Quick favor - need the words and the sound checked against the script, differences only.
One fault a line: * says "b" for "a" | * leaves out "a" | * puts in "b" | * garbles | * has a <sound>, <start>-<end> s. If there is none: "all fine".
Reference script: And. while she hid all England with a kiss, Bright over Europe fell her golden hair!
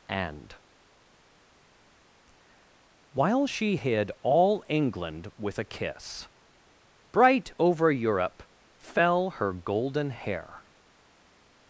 all fine